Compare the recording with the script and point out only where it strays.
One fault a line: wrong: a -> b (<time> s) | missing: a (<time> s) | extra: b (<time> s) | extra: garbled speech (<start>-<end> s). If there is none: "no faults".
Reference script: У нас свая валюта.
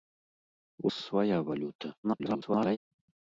missing: нас (0.9 s)
extra: garbled speech (2.0-2.8 s)